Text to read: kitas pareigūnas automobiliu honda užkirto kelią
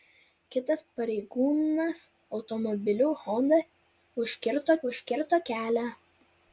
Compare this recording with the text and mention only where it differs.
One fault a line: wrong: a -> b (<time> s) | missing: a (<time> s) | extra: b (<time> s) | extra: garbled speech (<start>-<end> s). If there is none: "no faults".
extra: užkirto (4.9 s)